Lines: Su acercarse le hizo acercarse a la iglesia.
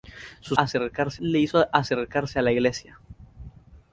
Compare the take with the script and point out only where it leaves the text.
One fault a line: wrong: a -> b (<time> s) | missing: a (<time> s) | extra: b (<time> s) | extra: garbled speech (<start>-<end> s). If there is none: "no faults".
no faults